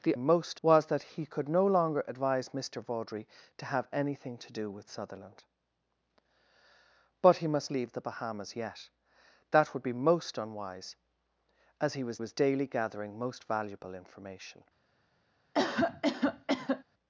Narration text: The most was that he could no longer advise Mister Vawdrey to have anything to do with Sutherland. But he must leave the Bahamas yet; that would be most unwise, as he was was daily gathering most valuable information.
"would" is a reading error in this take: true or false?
false